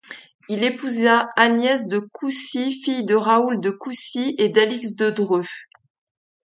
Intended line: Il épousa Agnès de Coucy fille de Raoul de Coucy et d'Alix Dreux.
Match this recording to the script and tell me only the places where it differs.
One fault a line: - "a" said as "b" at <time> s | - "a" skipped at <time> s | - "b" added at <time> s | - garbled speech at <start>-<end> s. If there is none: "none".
- "de" added at 5.0 s